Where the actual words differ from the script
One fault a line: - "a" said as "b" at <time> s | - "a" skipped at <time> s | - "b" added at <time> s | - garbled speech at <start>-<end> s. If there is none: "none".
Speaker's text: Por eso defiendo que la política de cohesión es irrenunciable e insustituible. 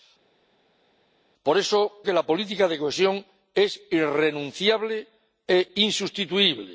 - "defiendo" skipped at 1.8 s